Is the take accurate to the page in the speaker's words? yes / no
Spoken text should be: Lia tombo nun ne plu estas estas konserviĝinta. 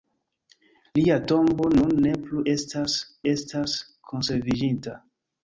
yes